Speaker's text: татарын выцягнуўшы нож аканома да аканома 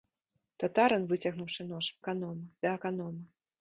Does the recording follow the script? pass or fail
pass